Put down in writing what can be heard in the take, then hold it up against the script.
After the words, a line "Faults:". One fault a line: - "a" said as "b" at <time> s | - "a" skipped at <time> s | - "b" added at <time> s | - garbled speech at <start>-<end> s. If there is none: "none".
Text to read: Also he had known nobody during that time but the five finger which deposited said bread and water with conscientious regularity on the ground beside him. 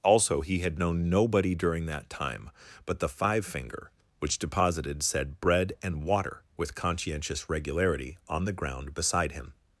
Also he had known nobody during that time but the five finger which deposited said bread and water with conscientious regularity on the ground beside him.
Faults:
none